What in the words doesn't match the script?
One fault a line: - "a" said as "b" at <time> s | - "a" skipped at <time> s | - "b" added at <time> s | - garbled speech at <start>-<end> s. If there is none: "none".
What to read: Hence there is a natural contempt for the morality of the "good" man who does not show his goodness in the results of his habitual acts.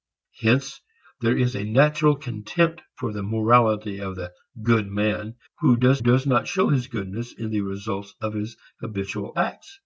- "does" added at 6.0 s